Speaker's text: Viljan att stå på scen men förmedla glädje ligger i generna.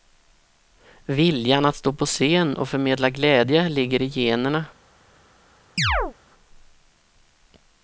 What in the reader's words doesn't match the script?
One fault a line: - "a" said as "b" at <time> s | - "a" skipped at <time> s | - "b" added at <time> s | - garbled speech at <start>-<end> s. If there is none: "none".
- "men" said as "och" at 2.6 s